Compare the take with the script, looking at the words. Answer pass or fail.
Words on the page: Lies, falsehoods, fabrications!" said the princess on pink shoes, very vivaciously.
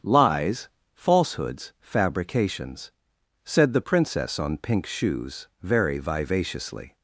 pass